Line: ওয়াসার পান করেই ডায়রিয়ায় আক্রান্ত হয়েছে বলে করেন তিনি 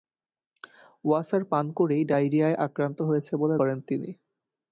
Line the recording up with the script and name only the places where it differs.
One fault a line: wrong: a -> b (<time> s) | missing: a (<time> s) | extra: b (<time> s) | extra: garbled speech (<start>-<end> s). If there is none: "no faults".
no faults